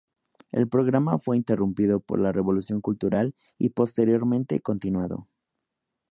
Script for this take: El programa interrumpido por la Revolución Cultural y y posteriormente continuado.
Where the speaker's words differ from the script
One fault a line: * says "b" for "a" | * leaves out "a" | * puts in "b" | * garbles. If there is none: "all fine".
* puts in "fue"
* leaves out "y"